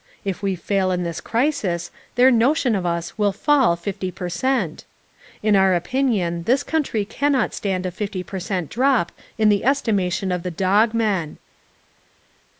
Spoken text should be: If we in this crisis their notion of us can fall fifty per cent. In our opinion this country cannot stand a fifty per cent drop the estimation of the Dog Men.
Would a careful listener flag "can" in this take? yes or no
yes